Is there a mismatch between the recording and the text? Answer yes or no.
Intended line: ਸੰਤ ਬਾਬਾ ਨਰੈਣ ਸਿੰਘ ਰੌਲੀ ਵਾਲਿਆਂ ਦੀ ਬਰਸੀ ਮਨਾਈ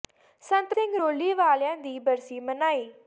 yes